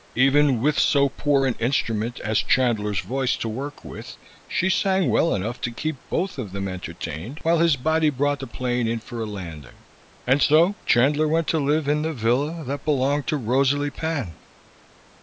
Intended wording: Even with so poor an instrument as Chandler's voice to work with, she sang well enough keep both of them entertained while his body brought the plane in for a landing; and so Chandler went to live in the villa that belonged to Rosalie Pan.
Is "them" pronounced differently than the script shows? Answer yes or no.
no